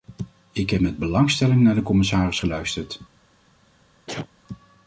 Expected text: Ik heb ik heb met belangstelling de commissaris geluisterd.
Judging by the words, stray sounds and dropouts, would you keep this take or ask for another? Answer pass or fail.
fail